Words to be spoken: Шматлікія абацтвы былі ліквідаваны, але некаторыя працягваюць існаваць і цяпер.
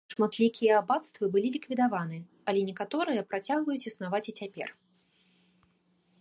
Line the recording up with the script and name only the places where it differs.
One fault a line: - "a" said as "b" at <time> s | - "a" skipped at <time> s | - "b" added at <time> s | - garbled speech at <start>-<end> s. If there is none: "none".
none